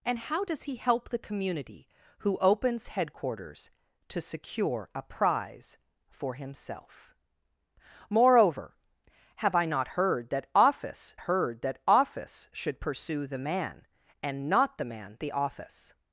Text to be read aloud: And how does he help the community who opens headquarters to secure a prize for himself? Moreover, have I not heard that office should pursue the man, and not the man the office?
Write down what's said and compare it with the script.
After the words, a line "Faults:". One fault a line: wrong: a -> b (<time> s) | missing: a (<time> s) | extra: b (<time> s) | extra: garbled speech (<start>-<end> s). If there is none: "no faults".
And how does he help the community who opens headquarters to secure a prize for himself? Moreover, have I not heard that office heard that office should pursue the man, and not the man the office?
Faults:
extra: heard that office (11.2 s)